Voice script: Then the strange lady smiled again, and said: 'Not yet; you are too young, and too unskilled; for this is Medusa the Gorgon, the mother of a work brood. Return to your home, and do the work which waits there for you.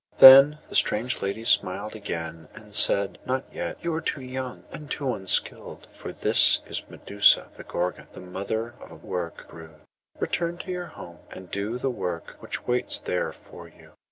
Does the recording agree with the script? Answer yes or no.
yes